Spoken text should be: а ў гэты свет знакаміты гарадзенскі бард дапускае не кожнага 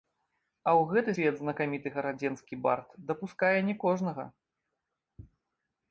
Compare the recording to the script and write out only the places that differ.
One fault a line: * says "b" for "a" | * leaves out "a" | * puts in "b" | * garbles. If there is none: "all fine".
all fine